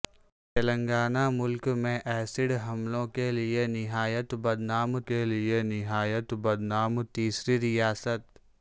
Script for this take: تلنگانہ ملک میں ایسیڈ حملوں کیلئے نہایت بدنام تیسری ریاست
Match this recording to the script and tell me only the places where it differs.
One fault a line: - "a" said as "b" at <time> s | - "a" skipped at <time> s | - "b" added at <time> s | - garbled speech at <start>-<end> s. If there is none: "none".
- "کیلئے نہایت بدنام" added at 5.0 s